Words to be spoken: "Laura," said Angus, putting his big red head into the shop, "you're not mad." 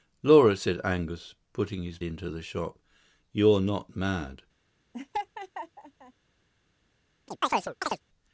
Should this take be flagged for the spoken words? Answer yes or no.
yes